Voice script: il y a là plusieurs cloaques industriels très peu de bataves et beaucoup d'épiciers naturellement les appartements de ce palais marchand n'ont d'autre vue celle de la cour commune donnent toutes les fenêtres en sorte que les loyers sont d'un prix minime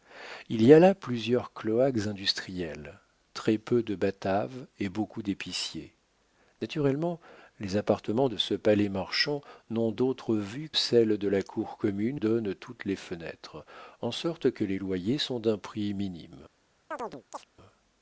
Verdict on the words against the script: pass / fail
pass